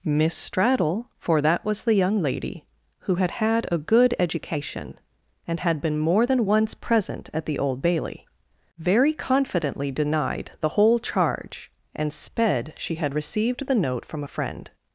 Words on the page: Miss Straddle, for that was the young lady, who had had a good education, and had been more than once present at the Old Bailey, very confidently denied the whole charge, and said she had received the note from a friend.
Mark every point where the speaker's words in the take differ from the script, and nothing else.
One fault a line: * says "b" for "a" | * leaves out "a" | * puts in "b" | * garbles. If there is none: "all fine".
* says "sped" for "said"